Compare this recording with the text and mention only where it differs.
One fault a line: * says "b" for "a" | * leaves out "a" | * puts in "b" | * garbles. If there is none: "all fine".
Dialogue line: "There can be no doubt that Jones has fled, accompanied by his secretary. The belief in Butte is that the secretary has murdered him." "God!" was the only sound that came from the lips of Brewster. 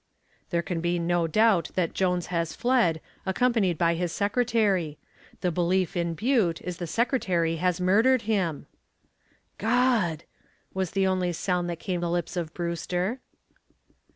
* leaves out "that"
* leaves out "from"